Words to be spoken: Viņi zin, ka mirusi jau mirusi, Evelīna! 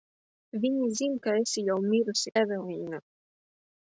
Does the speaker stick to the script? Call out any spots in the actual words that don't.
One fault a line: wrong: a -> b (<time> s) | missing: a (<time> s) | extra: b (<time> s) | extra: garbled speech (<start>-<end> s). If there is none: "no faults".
wrong: mirusi -> esi (1.4 s)